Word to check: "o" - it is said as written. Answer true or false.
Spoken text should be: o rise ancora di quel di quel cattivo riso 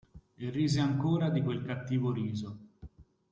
false